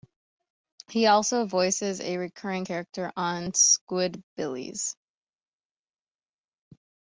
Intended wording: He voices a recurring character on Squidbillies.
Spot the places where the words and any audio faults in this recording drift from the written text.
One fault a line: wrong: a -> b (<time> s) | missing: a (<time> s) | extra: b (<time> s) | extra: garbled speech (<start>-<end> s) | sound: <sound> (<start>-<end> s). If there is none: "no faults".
extra: also (1.1 s)